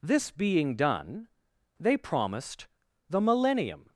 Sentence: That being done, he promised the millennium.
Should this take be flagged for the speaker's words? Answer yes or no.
yes